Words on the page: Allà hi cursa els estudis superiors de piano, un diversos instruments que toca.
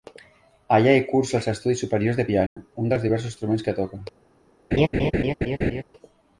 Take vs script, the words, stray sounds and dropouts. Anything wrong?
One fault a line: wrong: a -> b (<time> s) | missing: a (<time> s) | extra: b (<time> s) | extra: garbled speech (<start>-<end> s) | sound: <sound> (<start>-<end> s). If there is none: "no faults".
sound: dropout (2.5-2.6 s)
extra: dels (2.9 s)
sound: laugh (4.7-5.8 s)